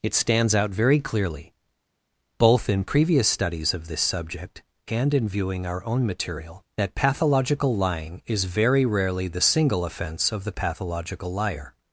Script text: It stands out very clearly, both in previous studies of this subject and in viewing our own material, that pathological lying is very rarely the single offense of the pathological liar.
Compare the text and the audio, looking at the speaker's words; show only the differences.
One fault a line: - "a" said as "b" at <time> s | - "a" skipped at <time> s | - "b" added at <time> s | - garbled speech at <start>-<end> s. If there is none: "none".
none